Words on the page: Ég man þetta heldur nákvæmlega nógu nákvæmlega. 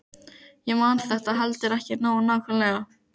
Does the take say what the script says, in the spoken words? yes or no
no